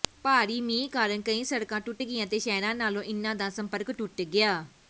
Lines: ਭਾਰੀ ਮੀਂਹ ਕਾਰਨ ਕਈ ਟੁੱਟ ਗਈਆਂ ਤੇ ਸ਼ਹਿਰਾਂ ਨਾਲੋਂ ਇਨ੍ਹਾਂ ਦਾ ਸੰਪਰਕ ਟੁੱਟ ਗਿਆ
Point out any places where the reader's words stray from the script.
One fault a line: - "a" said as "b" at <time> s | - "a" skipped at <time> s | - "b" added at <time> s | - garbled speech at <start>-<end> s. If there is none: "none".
- "ਸੜਕਾਂ" added at 1.4 s